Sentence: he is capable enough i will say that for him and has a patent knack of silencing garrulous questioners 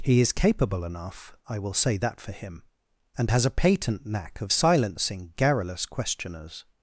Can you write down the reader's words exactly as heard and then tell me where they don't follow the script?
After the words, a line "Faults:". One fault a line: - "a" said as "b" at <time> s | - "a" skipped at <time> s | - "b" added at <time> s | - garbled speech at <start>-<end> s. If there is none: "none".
he is capable enough i will say that for him and has a patent knack of silencing garrulous questioners
Faults:
none